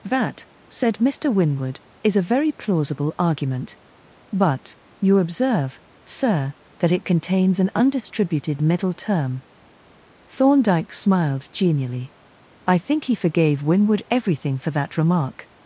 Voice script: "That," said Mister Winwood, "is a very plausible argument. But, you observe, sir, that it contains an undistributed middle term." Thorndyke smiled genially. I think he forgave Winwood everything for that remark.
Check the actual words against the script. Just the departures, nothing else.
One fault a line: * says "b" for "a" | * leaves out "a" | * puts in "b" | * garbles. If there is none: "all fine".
all fine